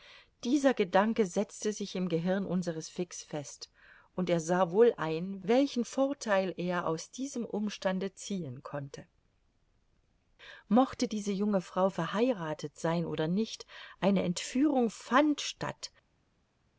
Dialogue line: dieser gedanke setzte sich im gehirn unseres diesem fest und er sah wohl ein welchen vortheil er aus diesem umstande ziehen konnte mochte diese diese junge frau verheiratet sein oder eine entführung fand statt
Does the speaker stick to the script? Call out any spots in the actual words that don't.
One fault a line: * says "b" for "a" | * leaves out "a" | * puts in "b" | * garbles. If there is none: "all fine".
* says "fix" for "diesem"
* leaves out "diese"
* puts in "nicht"